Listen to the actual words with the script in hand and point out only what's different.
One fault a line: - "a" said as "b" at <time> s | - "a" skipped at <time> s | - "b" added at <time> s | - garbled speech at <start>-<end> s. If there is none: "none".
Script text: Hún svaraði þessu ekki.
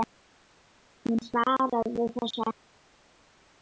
none